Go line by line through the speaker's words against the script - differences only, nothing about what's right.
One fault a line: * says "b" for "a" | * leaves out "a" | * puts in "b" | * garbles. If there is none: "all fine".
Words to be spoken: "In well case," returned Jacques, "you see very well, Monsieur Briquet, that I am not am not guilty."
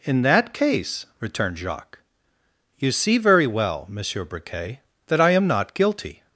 * says "that" for "well"
* leaves out "am not"